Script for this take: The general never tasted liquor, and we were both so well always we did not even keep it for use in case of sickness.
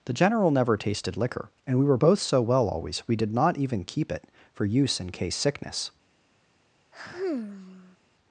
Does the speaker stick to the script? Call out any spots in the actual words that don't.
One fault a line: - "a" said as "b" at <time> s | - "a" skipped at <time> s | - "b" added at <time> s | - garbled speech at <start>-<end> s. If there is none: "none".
- "of" skipped at 5.4 s